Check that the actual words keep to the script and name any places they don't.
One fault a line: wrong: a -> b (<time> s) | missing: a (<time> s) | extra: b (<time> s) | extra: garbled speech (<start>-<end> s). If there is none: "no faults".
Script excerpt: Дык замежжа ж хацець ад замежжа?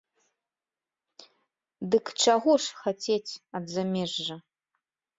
wrong: замежжа -> чаго (2.2 s)